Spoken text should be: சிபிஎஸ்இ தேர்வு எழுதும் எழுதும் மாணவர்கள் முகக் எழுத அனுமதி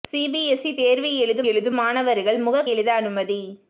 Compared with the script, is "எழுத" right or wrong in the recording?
right